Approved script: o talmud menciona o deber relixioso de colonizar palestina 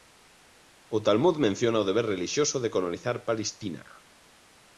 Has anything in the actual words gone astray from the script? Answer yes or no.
no